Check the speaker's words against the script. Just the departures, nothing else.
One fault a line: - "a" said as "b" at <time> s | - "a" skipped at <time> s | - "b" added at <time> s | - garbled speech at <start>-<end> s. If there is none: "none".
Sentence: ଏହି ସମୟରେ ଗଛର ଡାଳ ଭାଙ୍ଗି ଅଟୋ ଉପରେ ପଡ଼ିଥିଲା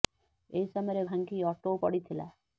- "ଗଛର ଡାଳ" skipped at 1.0 s
- "ଉପରେ" skipped at 1.8 s